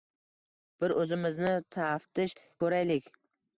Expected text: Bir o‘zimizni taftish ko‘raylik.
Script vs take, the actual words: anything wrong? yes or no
no